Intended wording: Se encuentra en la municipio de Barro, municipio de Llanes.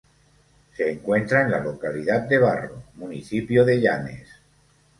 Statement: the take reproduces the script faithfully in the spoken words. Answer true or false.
false